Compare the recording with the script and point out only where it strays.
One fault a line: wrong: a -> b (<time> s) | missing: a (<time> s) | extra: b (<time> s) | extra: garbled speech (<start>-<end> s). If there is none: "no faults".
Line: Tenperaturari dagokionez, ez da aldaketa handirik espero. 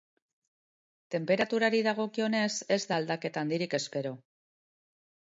no faults